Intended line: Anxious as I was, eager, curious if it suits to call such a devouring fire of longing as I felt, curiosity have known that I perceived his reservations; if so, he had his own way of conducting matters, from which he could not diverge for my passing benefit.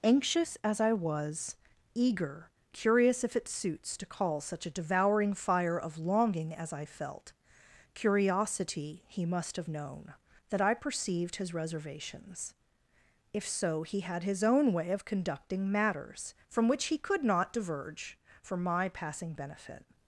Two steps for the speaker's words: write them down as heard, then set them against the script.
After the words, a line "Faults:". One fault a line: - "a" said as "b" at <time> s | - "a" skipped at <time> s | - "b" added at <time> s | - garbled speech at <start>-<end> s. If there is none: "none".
Anxious as I was, eager, curious if it suits to call such a devouring fire of longing as I felt, curiosity he must have known that I perceived his reservations; if so, he had his own way of conducting matters, from which he could not diverge for my passing benefit.
Faults:
- "he must" added at 9.1 s